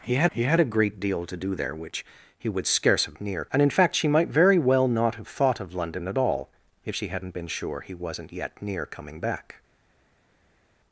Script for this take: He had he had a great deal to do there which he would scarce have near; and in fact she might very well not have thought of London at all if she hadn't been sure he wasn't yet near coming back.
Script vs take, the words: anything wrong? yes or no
no